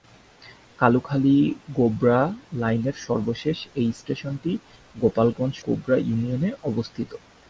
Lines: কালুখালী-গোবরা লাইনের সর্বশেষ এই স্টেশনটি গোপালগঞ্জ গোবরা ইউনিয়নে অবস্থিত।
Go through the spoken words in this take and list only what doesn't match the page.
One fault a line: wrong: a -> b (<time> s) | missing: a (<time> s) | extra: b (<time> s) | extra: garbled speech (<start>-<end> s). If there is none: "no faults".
no faults